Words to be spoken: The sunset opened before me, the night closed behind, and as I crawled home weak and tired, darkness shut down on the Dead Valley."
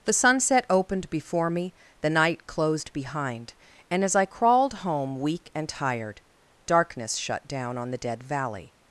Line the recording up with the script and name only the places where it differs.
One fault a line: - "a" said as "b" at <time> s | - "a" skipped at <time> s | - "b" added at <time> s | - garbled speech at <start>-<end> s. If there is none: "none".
none